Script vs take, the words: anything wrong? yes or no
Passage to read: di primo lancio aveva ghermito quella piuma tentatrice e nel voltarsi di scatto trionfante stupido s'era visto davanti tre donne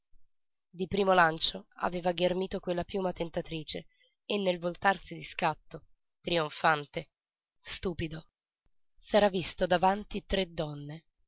no